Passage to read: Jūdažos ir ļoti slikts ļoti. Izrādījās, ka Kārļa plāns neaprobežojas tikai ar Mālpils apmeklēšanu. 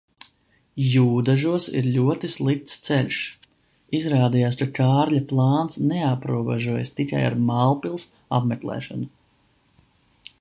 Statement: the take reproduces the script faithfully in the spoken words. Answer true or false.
false